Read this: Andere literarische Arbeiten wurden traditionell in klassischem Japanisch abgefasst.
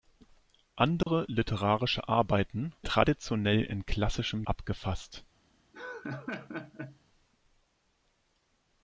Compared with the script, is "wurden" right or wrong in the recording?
wrong